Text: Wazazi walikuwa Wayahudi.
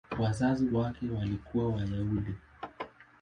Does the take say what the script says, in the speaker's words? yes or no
no